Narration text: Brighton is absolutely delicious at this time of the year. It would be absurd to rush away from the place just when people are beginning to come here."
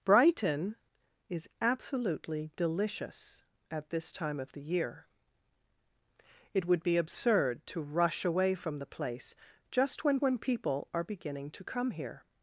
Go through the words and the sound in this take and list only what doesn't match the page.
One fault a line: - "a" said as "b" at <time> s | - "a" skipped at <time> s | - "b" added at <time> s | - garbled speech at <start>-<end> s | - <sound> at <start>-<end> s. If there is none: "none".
- "when" added at 10.2 s